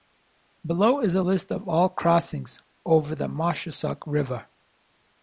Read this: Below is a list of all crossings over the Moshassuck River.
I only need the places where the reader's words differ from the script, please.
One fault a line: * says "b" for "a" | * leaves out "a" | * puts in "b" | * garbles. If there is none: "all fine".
all fine